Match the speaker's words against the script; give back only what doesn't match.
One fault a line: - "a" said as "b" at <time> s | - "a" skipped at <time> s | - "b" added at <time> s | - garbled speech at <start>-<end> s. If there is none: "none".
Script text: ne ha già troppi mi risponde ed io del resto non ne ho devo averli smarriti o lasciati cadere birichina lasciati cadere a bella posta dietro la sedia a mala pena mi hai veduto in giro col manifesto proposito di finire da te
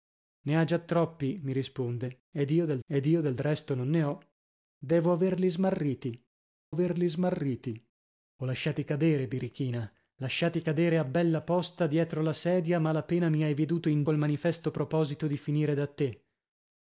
- "ed io del" added at 2.9 s
- "averli smarriti" added at 6.7 s
- "giro" skipped at 14.0 s